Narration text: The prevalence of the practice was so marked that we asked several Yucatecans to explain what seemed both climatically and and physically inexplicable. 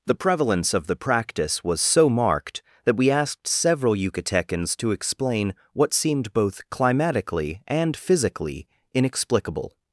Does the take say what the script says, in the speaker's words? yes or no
no